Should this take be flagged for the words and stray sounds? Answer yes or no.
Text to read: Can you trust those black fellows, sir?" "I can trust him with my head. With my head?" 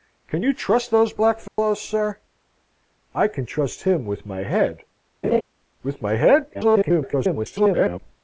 yes